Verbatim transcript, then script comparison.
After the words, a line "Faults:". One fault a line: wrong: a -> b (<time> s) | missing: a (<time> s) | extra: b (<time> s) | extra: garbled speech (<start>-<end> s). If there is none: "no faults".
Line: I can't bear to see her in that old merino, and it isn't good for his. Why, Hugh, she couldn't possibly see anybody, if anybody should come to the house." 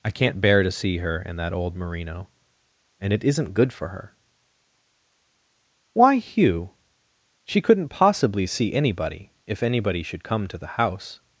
I can't bear to see her in that old merino, and it isn't good for her. Why, Hugh, she couldn't possibly see anybody, if anybody should come to the house."
Faults:
wrong: his -> her (3.9 s)